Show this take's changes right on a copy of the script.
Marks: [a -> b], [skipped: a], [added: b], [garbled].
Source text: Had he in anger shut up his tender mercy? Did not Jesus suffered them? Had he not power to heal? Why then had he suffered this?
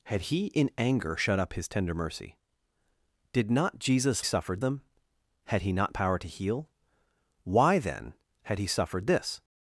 Had he in anger shut up his tender mercy? Did not Jesus suffered them? Had he not power to heal? Why then had he suffered this?